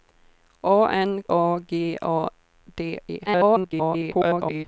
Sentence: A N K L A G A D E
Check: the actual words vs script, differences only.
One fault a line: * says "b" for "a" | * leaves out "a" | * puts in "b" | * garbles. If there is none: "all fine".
* leaves out "K L"
* garbles